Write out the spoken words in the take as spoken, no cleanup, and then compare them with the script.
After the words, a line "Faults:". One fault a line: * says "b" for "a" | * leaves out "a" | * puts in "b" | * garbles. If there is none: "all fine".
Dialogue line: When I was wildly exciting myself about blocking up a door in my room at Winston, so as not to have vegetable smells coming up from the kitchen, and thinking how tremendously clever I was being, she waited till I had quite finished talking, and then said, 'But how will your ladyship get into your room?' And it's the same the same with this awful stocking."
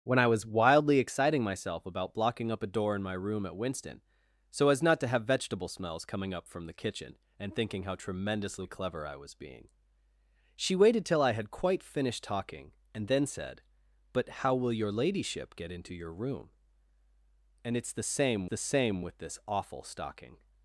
When I was wildly exciting myself about blocking up a door in my room at Winston, so as not to have vegetable smells coming up from the kitchen, and thinking how tremendously clever I was being, she waited till I had quite finished talking, and then said, 'But how will your ladyship get into your room?' And it's the same the same with this awful stocking."
Faults:
all fine